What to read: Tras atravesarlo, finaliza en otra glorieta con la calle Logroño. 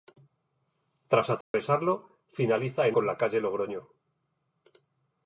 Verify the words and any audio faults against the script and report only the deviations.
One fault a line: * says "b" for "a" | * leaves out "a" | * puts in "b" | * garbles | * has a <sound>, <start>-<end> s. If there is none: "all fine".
* has a dropout, 1.4-1.5 s
* leaves out "otra glorieta"